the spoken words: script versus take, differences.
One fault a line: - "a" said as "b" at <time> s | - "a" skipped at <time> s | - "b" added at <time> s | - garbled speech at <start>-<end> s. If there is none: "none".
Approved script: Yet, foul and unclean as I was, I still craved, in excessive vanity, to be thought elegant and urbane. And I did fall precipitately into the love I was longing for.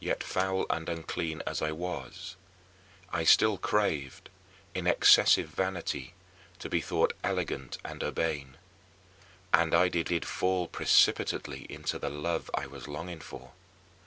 - "did" added at 10.1 s